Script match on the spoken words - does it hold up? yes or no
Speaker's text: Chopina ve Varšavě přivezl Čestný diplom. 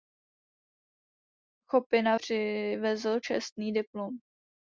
no